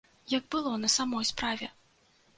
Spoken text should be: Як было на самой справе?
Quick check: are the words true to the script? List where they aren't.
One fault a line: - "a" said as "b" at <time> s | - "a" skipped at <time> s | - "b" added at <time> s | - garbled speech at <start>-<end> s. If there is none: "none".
none